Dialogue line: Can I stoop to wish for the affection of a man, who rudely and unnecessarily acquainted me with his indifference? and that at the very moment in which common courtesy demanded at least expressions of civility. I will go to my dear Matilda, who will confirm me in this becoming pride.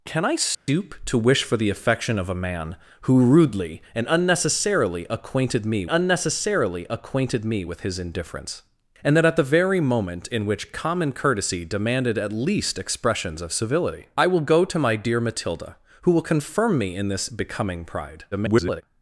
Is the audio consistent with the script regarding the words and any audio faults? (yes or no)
no